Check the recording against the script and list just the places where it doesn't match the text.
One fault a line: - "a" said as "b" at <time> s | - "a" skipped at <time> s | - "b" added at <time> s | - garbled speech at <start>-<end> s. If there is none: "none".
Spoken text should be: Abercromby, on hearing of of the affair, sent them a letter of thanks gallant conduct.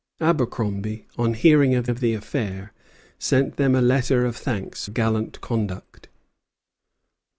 none